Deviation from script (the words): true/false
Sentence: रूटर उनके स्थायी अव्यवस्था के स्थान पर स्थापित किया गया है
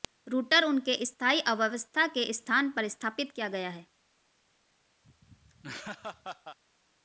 false